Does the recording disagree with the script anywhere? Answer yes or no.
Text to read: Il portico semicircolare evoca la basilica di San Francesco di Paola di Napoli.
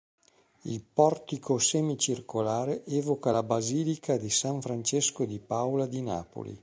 no